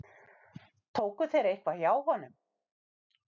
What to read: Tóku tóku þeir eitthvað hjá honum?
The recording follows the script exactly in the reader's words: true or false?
false